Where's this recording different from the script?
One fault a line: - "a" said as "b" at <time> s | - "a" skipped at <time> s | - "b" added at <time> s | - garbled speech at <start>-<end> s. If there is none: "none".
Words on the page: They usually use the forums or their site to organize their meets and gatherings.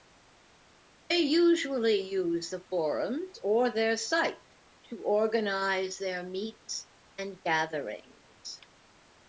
none